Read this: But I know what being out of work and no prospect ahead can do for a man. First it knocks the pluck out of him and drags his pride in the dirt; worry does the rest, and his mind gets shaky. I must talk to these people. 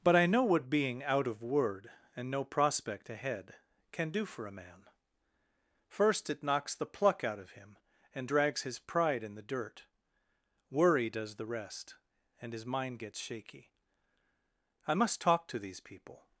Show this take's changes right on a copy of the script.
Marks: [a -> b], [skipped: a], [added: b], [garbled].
But I know what being out of [work -> word] and no prospect ahead can do for a man. First it knocks the pluck out of him and drags his pride in the dirt; worry does the rest, and his mind gets shaky. I must talk to these people.